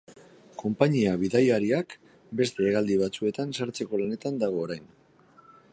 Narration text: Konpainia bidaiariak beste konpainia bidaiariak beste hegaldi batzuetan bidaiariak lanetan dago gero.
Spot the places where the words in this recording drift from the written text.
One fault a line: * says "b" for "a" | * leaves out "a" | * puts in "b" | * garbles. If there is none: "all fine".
* leaves out "konpainia bidaiariak beste"
* says "sartzeko" for "bidaiariak"
* says "orain" for "gero"